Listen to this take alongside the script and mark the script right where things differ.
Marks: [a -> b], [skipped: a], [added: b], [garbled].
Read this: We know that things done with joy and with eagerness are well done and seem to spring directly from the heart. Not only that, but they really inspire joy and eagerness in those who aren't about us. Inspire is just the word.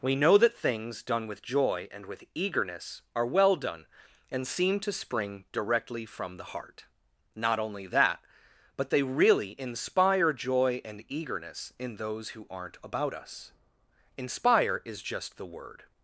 We know that things done with joy and with eagerness are well done and seem to spring directly from the heart. Not only that, but they really inspire joy and eagerness in those who aren't about us. Inspire is just the word.